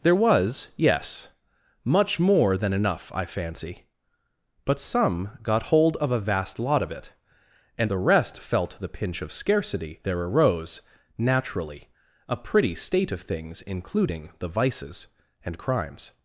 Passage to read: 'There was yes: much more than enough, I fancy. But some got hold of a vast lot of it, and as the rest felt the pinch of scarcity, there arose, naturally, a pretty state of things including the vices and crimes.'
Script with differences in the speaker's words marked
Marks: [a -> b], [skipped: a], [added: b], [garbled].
'There was yes: much more than enough, I fancy. But some got hold of a vast lot of it, and [skipped: as] the rest felt the pinch of scarcity, there arose, naturally, a pretty state of things including the vices and crimes.'